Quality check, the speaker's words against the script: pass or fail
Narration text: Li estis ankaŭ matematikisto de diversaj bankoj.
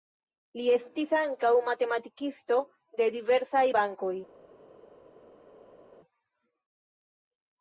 pass